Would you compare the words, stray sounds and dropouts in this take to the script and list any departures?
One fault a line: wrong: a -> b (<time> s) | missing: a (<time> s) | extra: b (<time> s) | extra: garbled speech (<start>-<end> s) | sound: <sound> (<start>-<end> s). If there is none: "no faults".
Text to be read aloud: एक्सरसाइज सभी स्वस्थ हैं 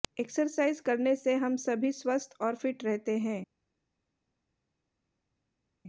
extra: करने से हम (0.8 s)
extra: और फिट रहते (2.4 s)